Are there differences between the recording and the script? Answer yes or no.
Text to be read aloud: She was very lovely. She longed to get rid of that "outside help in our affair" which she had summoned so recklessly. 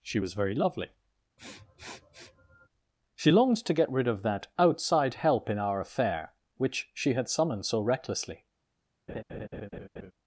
no